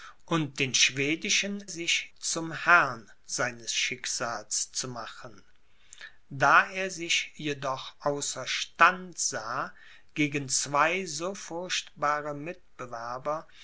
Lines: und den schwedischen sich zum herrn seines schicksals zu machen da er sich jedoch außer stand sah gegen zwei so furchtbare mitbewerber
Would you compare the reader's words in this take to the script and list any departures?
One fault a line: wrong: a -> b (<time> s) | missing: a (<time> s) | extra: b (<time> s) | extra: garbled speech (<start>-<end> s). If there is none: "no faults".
no faults